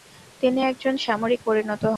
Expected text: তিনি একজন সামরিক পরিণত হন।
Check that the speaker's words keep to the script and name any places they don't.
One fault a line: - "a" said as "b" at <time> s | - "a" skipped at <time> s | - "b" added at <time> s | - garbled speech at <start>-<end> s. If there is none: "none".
none